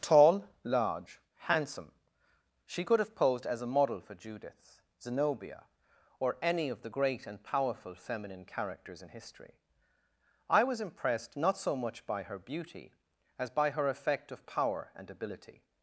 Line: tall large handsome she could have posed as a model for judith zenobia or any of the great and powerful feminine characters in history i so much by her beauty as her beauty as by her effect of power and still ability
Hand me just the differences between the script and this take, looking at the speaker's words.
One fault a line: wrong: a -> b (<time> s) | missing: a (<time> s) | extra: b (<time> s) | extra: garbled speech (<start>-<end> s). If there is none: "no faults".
extra: was impressed not (10.6 s)
missing: her beauty as (13.5 s)
missing: still (15.1 s)